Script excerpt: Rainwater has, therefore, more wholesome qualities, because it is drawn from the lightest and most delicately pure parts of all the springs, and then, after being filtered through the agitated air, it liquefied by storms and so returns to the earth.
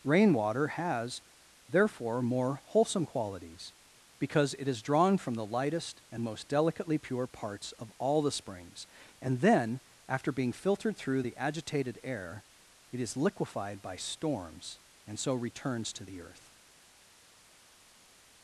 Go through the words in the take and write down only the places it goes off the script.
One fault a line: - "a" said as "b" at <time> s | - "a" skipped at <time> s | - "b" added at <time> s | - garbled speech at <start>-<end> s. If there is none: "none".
- "is" added at 13.0 s